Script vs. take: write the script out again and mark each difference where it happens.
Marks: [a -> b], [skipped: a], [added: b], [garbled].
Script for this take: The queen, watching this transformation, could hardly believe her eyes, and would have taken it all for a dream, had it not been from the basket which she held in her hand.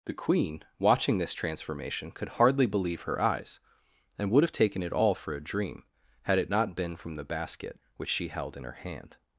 The queen, watching this transformation, could hardly believe her eyes, and would have taken it all for a dream, had it not been from the basket which she held in her hand.